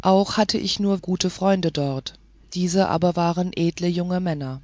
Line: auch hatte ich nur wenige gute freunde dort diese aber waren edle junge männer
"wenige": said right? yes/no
no